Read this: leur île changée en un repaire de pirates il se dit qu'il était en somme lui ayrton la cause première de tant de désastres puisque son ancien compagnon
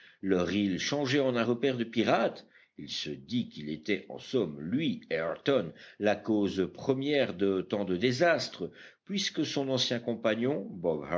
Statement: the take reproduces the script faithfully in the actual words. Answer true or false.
true